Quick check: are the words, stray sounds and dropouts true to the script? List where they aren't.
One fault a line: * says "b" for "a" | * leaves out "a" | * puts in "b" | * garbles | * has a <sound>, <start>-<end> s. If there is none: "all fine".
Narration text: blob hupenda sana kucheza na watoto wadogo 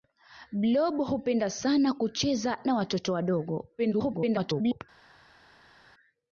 * garbles